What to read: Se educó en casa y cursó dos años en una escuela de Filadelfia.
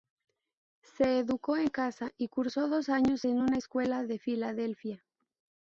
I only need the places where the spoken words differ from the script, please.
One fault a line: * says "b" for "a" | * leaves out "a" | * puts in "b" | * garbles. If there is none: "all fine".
all fine